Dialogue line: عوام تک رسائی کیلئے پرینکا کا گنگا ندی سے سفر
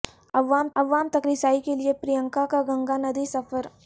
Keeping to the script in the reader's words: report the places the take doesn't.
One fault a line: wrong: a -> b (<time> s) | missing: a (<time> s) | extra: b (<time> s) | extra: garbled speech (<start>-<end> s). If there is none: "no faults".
extra: عوام (0.7 s)
missing: سے (3.3 s)